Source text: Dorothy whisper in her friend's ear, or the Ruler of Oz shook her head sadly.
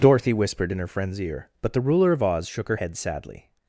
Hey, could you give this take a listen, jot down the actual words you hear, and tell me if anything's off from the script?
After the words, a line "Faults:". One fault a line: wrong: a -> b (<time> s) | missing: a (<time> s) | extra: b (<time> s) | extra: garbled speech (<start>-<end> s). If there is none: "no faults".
Dorothy whispered in her friend's ear, but the Ruler of Oz shook her head sadly.
Faults:
wrong: whisper -> whispered (0.3 s)
wrong: or -> but (1.6 s)